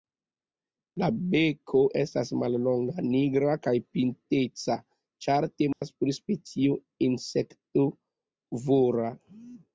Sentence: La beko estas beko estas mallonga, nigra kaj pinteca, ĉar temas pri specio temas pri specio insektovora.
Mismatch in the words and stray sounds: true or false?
true